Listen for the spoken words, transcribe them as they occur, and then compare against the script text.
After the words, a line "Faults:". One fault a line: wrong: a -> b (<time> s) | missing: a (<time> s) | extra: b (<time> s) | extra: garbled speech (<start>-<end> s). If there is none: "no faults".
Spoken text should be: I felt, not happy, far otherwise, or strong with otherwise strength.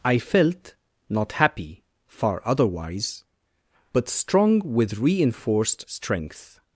I felt, not happy, far otherwise, but strong with reinforced strength.
Faults:
wrong: or -> but (3.9 s)
wrong: otherwise -> reinforced (5.0 s)